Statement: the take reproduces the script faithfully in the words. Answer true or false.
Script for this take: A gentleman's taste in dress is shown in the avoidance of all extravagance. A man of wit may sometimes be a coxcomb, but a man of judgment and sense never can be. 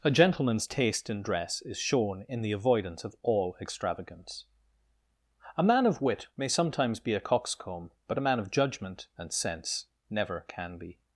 true